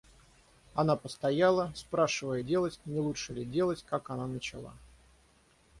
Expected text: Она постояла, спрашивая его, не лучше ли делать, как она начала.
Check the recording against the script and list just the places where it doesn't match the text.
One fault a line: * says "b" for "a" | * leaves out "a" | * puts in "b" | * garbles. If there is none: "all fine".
* says "делать" for "его"